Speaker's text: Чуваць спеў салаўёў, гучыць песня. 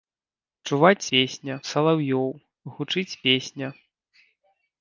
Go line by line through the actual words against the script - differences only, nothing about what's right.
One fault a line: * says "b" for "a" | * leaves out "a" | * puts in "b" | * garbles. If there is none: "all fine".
* says "песня" for "спеў"